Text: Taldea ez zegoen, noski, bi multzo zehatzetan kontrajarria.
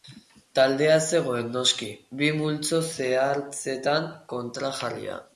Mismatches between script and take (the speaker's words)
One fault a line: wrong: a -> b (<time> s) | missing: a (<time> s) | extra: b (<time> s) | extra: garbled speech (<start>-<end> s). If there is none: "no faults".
no faults